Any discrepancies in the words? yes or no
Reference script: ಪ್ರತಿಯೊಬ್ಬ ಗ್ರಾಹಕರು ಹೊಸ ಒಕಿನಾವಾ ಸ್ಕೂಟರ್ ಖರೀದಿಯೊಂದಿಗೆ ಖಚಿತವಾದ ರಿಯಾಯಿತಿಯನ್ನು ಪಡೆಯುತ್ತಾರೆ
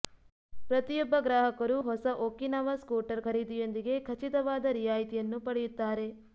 no